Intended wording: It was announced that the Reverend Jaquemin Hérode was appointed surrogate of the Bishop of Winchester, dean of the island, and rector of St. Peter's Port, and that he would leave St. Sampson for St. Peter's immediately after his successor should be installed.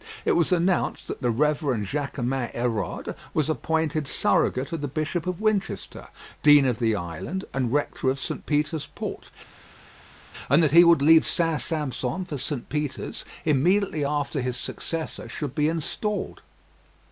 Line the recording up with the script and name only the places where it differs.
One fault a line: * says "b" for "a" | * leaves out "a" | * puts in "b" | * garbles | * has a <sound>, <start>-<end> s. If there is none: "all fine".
all fine